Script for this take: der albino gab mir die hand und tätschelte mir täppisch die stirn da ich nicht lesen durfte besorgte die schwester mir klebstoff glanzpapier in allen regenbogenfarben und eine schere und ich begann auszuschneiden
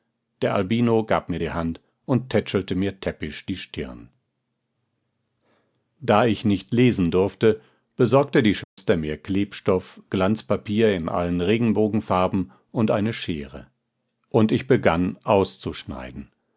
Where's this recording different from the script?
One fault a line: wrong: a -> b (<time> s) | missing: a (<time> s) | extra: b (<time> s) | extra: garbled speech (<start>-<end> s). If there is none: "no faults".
no faults